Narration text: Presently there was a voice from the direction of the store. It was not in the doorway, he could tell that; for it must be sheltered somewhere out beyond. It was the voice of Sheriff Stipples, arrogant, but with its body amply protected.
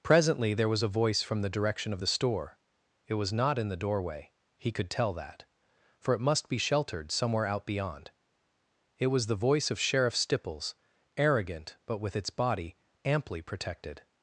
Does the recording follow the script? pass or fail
pass